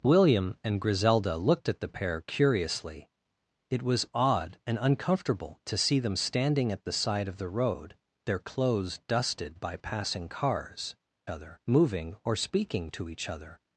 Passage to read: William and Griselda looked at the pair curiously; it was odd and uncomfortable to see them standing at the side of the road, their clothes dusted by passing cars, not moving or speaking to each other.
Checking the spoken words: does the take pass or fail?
fail